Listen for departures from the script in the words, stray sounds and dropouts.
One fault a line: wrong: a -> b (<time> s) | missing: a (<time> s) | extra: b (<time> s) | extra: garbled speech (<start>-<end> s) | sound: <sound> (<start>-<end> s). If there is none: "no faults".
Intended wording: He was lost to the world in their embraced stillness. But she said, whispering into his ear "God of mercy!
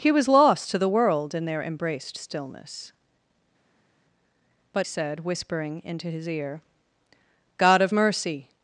missing: she (4.9 s)